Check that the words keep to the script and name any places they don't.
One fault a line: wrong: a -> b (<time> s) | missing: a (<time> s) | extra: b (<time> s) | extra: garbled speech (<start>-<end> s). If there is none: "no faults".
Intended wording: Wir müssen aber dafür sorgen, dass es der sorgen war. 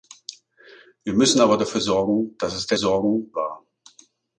no faults